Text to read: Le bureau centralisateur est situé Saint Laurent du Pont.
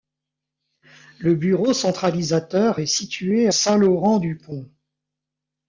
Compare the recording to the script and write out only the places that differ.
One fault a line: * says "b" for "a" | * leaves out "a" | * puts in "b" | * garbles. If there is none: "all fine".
all fine